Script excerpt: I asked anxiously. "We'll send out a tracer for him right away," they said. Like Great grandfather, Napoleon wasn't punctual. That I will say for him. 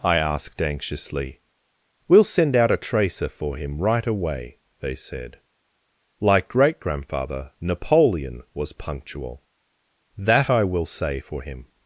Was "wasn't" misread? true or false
true